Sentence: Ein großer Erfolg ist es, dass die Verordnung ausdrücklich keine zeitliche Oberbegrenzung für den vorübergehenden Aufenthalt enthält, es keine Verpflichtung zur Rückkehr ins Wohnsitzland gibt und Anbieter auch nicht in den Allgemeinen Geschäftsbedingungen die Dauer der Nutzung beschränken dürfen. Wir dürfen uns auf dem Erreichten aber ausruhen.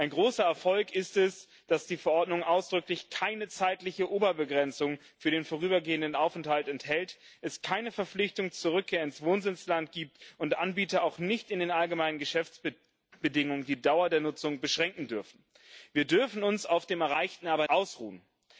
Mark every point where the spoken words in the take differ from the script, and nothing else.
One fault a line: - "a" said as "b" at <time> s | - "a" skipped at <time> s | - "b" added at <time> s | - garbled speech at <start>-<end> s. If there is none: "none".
none